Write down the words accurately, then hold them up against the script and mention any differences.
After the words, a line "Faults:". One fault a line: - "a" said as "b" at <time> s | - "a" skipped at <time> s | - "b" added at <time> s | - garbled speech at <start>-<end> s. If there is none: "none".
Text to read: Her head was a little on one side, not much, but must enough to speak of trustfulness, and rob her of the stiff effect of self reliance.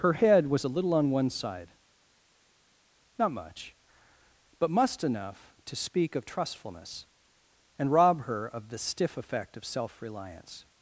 Her head was a little on one side, not much, but must enough to speak of trustfulness, and rob her of the stiff effect of self reliance.
Faults:
none